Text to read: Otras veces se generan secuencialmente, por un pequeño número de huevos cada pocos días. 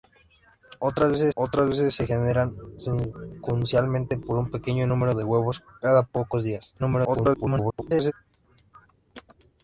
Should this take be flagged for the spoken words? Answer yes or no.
yes